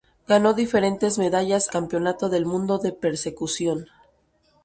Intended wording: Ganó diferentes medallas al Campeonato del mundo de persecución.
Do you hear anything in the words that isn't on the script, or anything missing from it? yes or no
yes